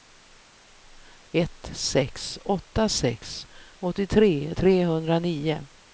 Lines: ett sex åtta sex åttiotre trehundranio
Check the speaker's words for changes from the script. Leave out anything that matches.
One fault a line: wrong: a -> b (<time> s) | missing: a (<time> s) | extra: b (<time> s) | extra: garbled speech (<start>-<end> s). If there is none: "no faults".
no faults